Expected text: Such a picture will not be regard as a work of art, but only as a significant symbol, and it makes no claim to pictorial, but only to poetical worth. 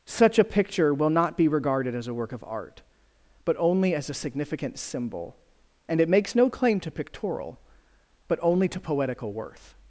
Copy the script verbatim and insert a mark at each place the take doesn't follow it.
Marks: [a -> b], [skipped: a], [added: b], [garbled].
Such a picture will not be [regard -> regarded] as a work of art, but only as a significant symbol, and it makes no claim to pictorial, but only to poetical worth.